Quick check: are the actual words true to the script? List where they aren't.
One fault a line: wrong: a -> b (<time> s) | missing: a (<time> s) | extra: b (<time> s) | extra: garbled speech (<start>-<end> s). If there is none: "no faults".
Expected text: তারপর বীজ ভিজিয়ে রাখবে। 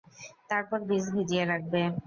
no faults